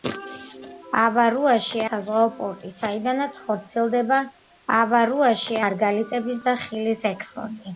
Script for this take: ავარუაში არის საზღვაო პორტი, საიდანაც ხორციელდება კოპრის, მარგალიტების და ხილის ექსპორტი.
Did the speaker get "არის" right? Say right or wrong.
wrong